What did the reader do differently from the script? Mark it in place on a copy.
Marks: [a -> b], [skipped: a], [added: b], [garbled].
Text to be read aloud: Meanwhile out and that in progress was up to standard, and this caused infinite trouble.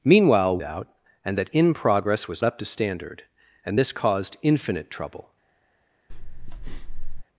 Meanwhile out and that in progress was up to standard, and this caused infinite trouble.